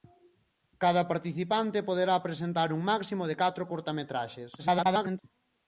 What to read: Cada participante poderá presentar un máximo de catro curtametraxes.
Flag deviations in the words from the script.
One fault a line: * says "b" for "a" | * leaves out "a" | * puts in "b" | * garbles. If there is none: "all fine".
* garbles